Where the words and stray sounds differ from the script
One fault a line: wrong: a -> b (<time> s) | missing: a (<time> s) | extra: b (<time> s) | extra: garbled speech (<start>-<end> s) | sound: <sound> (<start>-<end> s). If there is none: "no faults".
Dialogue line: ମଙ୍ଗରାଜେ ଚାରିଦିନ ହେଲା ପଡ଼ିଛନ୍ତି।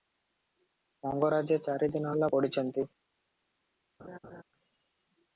sound: laugh (4.0-4.4 s)